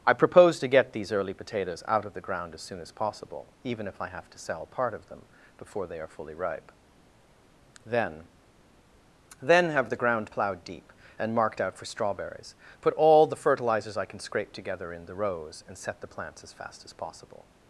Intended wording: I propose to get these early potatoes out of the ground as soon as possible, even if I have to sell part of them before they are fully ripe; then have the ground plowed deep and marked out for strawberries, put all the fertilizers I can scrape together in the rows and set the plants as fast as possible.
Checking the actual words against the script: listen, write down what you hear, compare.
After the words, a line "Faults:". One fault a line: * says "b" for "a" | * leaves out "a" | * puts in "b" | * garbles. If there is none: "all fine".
I propose to get these early potatoes out of the ground as soon as possible, even if I have to sell part of them before they are fully ripe; then then have the ground plowed deep and marked out for strawberries, put all the fertilizers I can scrape together in the rows and set the plants as fast as possible.
Faults:
* puts in "then"